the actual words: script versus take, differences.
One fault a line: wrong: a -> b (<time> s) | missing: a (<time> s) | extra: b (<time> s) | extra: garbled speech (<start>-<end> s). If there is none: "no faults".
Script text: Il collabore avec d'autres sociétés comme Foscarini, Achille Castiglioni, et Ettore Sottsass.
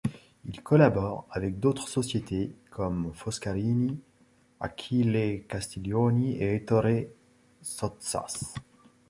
no faults